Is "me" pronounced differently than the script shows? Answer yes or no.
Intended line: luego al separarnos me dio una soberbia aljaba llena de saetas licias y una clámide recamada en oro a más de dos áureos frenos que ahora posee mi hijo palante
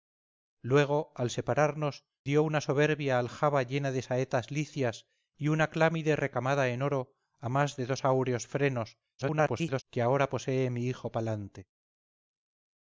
yes